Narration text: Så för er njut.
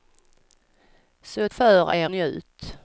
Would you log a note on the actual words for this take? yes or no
no